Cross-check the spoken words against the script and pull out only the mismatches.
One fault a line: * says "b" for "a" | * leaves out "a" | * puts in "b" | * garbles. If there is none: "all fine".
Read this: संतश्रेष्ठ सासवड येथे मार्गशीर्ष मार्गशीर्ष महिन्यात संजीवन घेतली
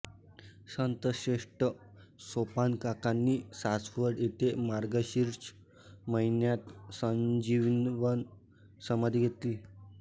* puts in "सोपानकाकांनी"
* leaves out "मार्गशीर्ष"
* puts in "समाधी"